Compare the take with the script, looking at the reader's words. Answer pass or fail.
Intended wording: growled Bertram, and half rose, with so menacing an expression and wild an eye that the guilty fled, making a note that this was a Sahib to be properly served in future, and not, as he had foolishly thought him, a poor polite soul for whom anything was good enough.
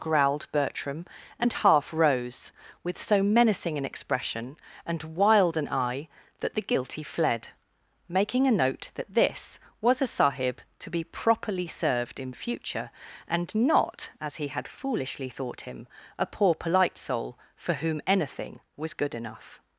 pass